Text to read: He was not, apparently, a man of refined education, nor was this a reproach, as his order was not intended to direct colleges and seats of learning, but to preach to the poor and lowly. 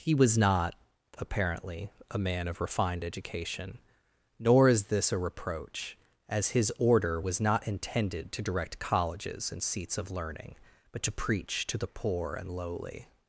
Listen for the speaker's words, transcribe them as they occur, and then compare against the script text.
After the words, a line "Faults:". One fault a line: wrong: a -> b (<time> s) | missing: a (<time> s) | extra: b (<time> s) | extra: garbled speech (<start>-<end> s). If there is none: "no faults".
He was not, apparently, a man of refined education, nor is this a reproach, as his order was not intended to direct colleges and seats of learning, but to preach to the poor and lowly.
Faults:
wrong: was -> is (4.7 s)